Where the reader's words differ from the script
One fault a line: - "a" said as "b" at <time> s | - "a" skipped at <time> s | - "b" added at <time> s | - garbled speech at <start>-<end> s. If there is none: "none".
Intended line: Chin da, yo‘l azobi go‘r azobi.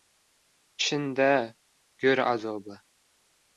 - "yo‘l azobi" skipped at 1.3 s